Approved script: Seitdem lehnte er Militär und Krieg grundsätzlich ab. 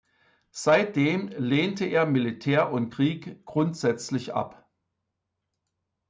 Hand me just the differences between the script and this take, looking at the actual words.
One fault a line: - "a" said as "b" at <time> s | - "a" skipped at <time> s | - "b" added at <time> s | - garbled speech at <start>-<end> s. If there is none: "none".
none